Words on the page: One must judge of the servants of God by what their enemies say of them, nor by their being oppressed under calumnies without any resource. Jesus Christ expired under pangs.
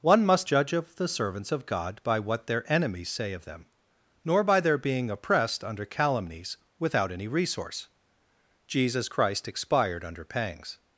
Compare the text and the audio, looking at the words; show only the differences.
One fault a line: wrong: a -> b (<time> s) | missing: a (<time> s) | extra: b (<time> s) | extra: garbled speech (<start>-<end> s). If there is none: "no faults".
no faults